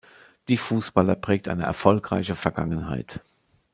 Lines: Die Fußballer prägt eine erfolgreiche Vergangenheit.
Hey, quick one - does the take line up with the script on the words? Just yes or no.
yes